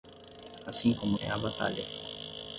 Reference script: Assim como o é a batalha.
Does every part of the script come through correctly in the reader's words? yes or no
yes